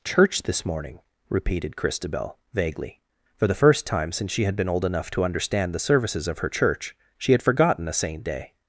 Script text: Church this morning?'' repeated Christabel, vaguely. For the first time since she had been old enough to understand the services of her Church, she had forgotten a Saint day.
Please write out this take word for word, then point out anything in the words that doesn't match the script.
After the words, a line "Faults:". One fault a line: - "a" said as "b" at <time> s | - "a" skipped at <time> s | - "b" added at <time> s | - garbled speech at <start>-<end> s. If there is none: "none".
Church this morning?'' repeated Christabel, vaguely. For the first time since she had been old enough to understand the services of her Church, she had forgotten a Saint day.
Faults:
none